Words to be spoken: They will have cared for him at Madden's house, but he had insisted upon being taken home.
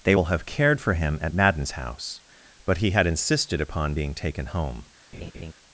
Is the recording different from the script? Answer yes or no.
no